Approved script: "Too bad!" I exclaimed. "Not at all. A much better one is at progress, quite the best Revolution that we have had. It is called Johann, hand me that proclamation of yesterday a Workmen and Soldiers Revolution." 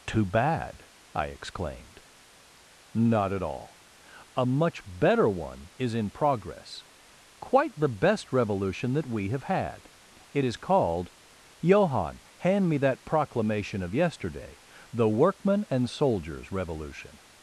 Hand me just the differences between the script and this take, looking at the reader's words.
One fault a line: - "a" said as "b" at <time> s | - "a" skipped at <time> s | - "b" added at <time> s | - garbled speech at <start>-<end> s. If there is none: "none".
- "at" said as "in" at 5.9 s
- "a" said as "the" at 14.9 s